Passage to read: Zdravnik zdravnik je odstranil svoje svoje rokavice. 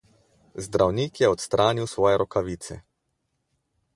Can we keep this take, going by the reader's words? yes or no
no